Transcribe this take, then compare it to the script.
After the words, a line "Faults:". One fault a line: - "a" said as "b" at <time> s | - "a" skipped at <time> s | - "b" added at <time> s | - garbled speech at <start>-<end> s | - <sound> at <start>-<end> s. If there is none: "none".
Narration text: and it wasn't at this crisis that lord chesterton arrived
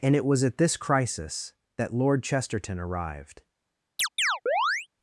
and it was at this crisis that lord chesterton arrived
Faults:
- "wasn't" said as "was" at 0.2 s
- chirp at 4.0-4.9 s